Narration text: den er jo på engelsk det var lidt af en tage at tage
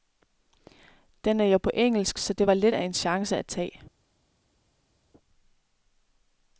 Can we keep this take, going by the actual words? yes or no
no